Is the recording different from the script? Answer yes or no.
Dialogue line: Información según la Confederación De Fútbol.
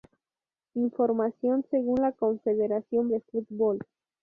no